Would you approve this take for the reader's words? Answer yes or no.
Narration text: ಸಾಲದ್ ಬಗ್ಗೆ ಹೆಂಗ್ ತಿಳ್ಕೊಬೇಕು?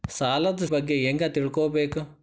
yes